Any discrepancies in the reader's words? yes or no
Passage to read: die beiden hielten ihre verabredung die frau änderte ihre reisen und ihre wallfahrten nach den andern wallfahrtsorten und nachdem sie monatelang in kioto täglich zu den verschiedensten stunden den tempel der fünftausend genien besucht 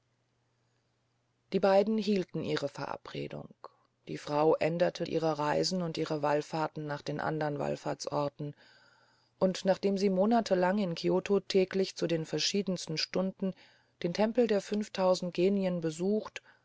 no